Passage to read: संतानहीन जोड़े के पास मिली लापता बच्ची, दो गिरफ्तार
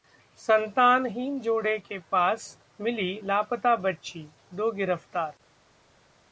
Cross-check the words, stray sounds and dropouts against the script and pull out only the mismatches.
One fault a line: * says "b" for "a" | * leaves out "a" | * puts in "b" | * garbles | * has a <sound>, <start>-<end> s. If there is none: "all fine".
all fine